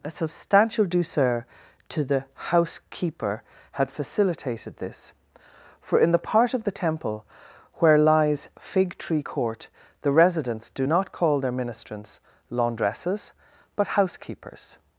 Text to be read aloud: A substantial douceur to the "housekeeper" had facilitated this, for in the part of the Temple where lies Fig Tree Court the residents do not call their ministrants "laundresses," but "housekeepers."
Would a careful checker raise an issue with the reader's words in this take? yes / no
no